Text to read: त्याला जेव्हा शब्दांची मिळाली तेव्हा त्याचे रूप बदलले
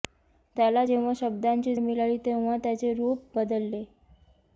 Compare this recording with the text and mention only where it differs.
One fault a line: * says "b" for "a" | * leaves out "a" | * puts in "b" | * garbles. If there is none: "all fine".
all fine